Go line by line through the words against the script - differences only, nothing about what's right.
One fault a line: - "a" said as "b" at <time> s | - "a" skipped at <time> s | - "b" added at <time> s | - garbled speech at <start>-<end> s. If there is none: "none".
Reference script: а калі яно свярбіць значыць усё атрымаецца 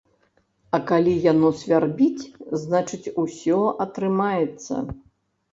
none